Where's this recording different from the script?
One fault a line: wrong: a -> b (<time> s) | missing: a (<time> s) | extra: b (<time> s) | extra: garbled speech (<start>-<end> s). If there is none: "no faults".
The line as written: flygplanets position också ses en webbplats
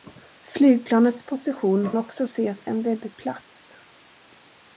no faults